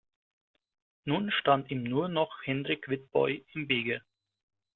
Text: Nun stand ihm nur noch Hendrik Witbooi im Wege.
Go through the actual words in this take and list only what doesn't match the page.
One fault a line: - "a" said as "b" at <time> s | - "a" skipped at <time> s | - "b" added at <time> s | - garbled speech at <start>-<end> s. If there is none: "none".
none